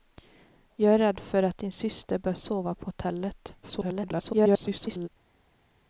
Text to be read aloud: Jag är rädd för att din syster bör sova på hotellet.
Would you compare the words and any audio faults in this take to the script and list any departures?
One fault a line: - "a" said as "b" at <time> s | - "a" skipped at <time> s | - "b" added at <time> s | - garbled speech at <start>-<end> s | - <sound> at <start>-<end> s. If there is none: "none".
- garbled speech at 3.6-5.1 s